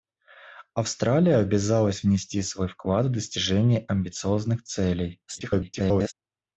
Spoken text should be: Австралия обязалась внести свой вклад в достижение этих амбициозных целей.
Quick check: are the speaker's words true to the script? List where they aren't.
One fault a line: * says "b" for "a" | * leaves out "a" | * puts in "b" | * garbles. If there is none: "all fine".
* leaves out "этих"
* garbles